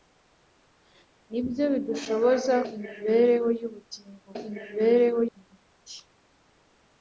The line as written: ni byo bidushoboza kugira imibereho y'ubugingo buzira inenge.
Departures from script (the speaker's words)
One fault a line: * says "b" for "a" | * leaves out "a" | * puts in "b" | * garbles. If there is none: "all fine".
* leaves out "kugira"
* says "imibereho" for "buzira"